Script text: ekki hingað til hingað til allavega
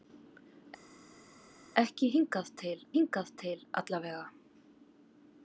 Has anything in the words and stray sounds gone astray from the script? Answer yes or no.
no